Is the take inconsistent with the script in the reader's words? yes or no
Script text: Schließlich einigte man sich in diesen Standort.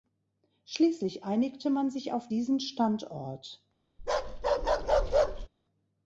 yes